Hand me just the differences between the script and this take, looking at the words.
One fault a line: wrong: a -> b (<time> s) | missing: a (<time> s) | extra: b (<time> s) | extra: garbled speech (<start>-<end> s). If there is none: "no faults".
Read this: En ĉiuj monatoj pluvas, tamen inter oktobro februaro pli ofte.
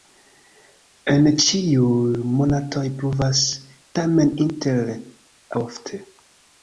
missing: oktobro februaro pli (4.9 s)